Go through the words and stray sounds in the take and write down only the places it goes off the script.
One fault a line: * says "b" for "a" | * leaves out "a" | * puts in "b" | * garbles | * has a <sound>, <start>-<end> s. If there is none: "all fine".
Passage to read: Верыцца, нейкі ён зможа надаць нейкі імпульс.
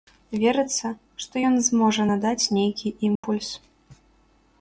* says "што" for "нейкі"
* has a dropout, 3.2-3.2 s